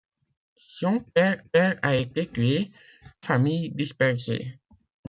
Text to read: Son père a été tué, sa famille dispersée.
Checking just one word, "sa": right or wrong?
wrong